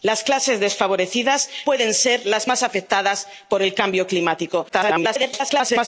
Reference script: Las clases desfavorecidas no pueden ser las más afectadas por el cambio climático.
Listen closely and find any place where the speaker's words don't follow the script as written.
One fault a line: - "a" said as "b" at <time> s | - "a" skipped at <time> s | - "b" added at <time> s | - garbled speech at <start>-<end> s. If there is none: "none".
- "no" skipped at 1.5 s
- garbled speech at 4.7-5.9 s